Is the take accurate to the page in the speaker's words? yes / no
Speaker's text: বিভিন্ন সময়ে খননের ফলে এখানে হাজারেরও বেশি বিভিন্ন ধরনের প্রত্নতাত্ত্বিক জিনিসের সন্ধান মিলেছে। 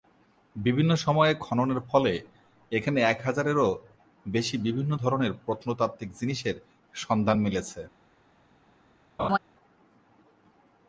no